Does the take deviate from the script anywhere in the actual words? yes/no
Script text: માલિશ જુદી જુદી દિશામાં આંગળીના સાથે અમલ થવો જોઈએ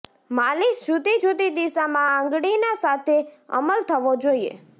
no